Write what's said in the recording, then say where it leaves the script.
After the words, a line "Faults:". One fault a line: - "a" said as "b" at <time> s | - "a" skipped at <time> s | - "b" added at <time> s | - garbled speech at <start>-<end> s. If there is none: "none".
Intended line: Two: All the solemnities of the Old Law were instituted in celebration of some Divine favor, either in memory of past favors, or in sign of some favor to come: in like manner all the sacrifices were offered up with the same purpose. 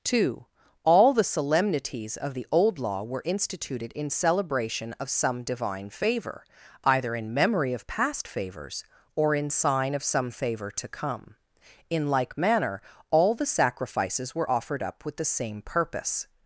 Two: All the solemnities of the Old Law were instituted in celebration of some Divine favor, either in memory of past favors, or in sign of some favor to come: in like manner all the sacrifices were offered up with the same purpose.
Faults:
none